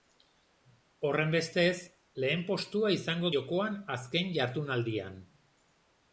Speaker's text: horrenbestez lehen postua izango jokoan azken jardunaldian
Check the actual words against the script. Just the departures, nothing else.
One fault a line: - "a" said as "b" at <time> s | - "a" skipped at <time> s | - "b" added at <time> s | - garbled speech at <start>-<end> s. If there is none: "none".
none